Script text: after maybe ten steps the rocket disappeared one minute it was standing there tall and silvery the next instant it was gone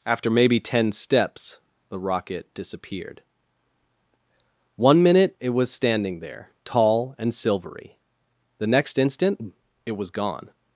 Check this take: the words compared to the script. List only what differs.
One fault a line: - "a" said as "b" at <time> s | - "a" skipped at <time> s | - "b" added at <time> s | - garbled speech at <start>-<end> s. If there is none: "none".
none